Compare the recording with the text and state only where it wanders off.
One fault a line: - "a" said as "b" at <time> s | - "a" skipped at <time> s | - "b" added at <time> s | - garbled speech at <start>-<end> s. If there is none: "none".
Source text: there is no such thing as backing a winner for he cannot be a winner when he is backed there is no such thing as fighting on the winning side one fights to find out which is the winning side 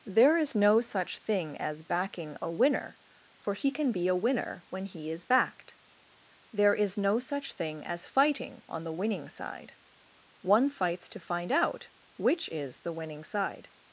- "cannot" said as "can" at 3.7 s